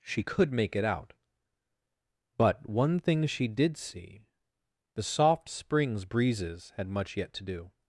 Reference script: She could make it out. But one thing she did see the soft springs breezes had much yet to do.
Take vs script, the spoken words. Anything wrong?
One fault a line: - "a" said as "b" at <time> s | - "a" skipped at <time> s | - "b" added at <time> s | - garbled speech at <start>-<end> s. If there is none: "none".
none